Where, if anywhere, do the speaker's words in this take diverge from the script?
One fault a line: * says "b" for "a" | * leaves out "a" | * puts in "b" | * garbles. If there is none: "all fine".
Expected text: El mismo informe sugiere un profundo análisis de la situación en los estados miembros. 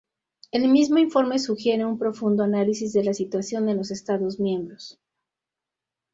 all fine